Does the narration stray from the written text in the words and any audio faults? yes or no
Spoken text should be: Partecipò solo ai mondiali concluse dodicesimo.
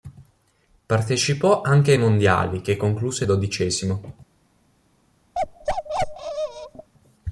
yes